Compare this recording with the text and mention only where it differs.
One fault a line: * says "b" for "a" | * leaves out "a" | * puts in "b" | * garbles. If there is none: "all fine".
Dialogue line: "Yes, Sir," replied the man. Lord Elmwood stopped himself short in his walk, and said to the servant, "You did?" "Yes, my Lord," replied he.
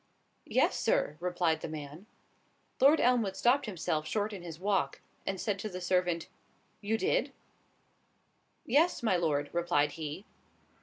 all fine